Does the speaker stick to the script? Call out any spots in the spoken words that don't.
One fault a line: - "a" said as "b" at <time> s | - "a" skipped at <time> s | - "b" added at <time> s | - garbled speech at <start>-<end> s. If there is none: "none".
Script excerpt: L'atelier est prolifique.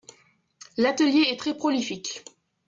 - "très" added at 1.4 s